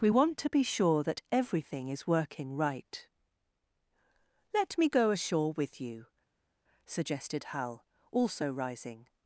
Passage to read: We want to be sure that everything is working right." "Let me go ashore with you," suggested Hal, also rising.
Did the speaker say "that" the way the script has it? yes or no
yes